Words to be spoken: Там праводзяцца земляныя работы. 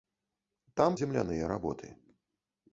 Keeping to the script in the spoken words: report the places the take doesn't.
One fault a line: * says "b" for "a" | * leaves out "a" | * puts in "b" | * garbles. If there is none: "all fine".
* leaves out "праводзяцца"